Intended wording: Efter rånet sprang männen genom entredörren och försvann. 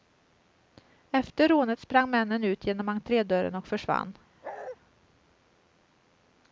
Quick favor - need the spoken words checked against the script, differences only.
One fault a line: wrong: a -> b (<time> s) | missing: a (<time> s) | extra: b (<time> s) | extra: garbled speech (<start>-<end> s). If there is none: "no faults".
extra: ut (2.4 s)